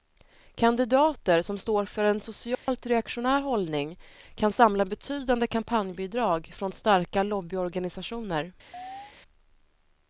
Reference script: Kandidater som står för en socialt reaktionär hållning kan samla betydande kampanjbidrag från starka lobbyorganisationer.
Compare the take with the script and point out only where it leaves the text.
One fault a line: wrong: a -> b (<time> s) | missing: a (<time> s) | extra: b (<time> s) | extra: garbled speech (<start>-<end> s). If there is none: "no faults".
no faults